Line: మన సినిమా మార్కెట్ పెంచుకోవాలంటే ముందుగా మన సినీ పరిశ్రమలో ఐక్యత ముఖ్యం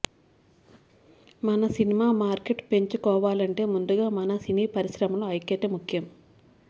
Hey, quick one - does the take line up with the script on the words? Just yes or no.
yes